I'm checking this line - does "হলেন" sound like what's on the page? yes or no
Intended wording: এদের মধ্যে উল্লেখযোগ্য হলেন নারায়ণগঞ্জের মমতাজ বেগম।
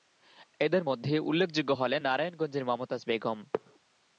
yes